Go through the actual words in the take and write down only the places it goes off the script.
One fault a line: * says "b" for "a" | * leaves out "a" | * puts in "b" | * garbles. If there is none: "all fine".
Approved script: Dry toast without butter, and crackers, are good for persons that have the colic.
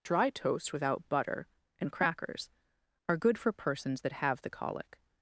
all fine